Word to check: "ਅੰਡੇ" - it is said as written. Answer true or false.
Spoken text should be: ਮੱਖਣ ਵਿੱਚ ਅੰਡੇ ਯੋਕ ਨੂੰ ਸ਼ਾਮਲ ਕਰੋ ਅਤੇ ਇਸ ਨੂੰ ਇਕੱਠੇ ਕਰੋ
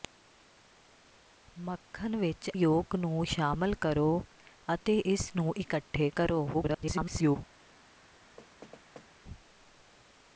false